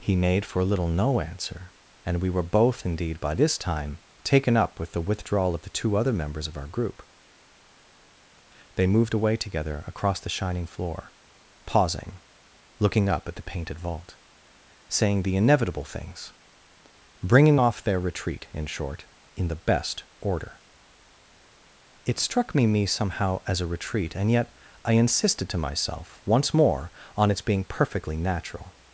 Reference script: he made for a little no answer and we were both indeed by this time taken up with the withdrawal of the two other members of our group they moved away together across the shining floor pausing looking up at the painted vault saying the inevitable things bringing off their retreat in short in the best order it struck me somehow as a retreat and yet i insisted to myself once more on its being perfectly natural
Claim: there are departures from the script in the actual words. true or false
true